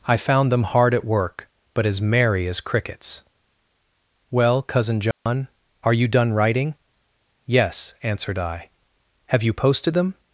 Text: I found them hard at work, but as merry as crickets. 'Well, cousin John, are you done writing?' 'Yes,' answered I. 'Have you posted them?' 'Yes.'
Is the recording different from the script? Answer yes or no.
yes